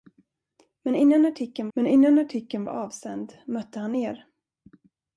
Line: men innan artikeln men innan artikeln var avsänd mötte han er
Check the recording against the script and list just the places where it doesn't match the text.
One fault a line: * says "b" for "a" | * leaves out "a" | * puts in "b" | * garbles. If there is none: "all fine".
all fine